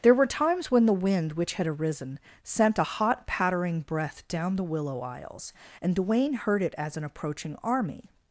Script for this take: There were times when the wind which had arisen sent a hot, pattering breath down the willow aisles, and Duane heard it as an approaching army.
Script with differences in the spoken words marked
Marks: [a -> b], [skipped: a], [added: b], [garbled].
There were times when the wind which had arisen sent a hot, pattering breath down the willow aisles, and Duane heard it as an approaching army.